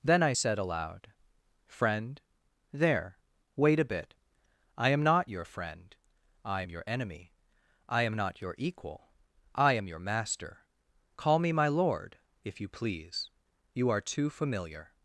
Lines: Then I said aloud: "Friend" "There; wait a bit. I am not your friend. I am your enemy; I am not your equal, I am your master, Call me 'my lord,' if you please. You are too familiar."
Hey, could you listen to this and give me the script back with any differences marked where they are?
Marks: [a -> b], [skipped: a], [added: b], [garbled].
Then I said aloud: "Friend" "There; wait a bit. I am not your friend. I am your enemy; I am not your equal, I am your master, Call me 'my lord,' if you please. You are too familiar."